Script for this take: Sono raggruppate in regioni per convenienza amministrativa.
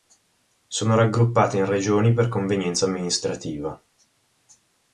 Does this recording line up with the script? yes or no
yes